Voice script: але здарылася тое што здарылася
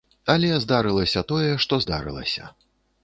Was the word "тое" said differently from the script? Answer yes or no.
no